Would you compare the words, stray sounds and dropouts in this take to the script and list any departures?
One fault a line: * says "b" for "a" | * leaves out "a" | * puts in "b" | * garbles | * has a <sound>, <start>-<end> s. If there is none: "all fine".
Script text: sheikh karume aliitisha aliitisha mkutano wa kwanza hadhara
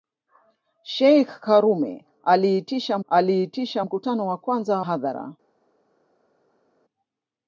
all fine